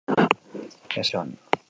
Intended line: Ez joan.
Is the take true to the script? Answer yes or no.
yes